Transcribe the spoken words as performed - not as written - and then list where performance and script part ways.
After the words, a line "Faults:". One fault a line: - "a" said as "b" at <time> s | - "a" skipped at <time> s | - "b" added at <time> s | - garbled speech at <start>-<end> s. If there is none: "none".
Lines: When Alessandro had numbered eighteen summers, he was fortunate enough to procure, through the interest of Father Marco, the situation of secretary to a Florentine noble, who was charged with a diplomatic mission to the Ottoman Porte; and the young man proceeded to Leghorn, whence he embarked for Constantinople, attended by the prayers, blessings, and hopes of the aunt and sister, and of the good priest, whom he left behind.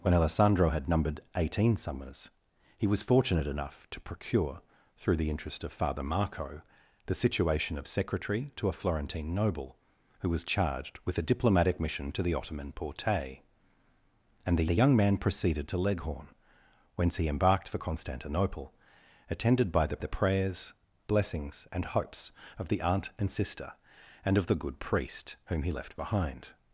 When Alessandro had numbered eighteen summers, he was fortunate enough to procure, through the interest of Father Marco, the situation of secretary to a Florentine noble, who was charged with a diplomatic mission to the Ottoman Porte; and the the young man proceeded to Leghorn, whence he embarked for Constantinople, attended by the the prayers, blessings, and hopes of the aunt and sister, and of the good priest, whom he left behind.
Faults:
- "the" added at 14.7 s
- "the" added at 20.0 s